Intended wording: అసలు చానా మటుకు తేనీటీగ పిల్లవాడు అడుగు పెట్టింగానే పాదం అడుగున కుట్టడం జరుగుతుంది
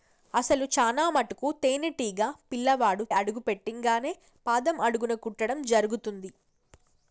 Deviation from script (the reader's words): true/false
false